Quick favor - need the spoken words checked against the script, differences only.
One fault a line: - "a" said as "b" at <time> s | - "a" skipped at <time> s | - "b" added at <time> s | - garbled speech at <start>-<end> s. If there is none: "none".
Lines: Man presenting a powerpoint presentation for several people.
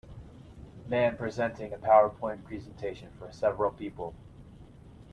none